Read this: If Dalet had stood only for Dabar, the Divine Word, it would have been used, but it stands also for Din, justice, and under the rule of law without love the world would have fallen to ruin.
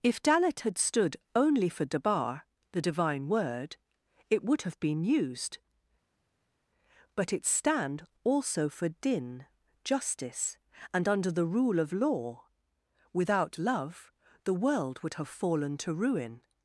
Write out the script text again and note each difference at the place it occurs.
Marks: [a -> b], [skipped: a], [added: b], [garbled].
If Dalet had stood only for Dabar, the Divine Word, it would have been used, but it [stands -> stand] also for Din, justice, and under the rule of law without love the world would have fallen to ruin.